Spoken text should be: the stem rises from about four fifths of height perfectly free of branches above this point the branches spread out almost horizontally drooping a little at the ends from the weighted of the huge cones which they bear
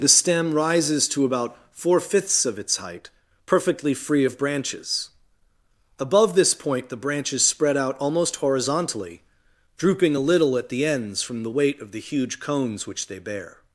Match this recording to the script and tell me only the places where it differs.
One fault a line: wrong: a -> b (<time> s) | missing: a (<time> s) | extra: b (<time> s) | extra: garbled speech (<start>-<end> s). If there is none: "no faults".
wrong: from -> to (1.1 s)
extra: its (2.6 s)
wrong: weighted -> weight (11.5 s)